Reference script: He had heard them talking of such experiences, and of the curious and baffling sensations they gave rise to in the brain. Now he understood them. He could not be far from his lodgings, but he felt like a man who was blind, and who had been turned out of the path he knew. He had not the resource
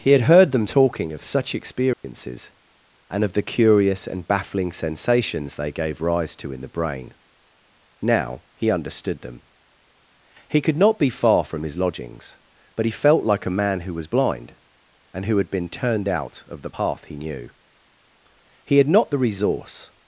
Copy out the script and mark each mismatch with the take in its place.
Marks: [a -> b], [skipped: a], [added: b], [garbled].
He had heard them talking of such experiences, and of the curious and baffling sensations they gave rise to in the brain. Now he understood them. He could not be far from his lodgings, but he felt like a man who was blind, and who had been turned out of the path he knew. He had not the resource